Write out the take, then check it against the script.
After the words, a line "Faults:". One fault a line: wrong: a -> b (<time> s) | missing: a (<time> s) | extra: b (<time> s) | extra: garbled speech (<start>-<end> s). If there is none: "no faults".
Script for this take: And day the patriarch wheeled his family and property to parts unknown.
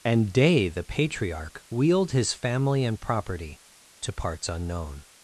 And day the patriarch wheeled his family and property to parts unknown.
Faults:
no faults